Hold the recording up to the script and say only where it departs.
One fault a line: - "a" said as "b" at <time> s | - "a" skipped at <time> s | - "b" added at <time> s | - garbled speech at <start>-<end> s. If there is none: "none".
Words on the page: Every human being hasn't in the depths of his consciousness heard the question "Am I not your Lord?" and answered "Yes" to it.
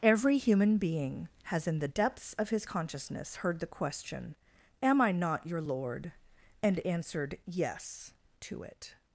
- "hasn't" said as "has" at 1.4 s